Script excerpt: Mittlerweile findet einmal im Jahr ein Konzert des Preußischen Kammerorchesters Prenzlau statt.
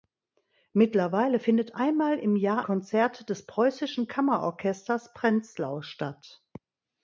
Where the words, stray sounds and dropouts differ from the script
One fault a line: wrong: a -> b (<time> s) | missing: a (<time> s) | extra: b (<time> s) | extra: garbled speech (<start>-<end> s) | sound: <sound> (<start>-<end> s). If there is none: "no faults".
missing: ein (2.6 s)